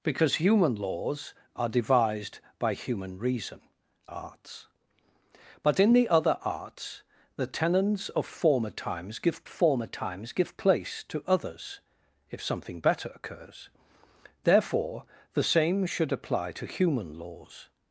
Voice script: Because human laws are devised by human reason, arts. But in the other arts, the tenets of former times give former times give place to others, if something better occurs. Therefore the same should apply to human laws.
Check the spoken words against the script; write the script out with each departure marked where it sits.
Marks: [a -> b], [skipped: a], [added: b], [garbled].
Because human laws are devised by human reason, arts. But in the other arts, the tenets of former times give former times give place to others, if something better occurs. Therefore the same should apply to human laws.